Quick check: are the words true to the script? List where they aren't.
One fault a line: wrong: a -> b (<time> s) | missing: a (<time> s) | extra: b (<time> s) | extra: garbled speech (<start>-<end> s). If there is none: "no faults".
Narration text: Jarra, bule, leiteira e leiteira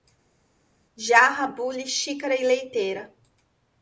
wrong: leiteira -> xícara (1.9 s)